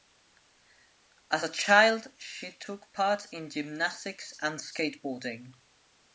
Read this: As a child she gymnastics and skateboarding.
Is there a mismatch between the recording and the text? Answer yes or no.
yes